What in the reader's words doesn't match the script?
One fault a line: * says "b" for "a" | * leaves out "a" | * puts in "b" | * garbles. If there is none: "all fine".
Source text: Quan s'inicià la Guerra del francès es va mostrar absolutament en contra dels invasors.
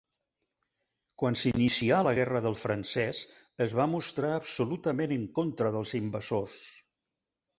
all fine